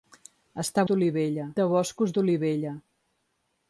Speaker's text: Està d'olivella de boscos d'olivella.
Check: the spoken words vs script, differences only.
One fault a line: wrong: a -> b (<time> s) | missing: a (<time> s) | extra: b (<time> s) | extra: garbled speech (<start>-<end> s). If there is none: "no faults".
no faults